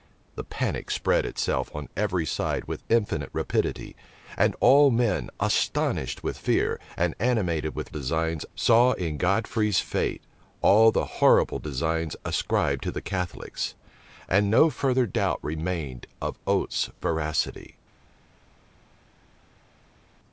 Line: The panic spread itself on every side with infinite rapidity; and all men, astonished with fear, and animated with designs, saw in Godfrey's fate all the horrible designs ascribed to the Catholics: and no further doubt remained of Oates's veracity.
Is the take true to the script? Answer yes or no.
yes